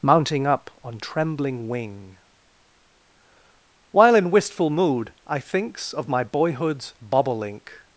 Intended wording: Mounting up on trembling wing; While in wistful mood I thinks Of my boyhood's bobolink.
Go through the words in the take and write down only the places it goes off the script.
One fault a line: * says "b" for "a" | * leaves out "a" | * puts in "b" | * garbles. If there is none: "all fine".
all fine